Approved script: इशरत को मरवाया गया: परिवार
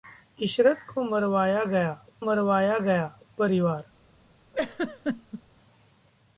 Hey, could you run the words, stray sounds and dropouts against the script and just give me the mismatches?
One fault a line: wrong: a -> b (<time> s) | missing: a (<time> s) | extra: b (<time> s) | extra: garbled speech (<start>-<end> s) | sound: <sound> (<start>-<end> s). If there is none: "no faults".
extra: मरवाया गया (2.2 s)
sound: laugh (4.5-5.4 s)